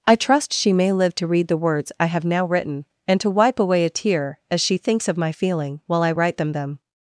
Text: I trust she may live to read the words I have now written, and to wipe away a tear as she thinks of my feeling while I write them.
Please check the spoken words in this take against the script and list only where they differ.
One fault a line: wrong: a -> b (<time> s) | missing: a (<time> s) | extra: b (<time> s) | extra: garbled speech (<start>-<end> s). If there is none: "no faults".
extra: them (6.5 s)